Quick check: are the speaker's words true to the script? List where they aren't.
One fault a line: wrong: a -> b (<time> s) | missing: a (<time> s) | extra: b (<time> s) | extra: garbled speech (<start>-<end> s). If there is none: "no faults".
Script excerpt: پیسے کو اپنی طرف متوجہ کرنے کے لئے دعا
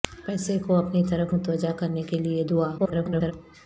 extra: garbled speech (2.8-3.3 s)